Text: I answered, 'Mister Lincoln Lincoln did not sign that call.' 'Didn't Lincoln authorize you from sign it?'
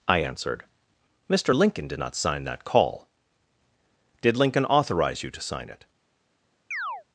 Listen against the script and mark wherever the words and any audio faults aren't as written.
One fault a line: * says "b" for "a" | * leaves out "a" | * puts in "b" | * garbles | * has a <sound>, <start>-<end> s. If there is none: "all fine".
* leaves out "Lincoln"
* says "Did" for "Didn't"
* says "to" for "from"
* has a chirp, 6.7-7.0 s